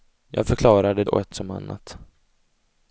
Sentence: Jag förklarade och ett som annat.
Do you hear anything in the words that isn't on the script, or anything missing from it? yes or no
no